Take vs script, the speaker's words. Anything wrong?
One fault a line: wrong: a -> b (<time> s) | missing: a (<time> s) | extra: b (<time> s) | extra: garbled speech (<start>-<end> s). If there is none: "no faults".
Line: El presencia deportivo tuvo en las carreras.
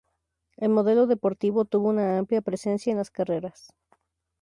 wrong: presencia -> modelo (0.7 s)
extra: una amplia presencia (1.9 s)